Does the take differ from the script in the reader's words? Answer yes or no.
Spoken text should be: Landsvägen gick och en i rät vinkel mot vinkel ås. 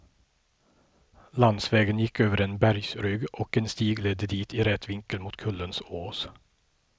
yes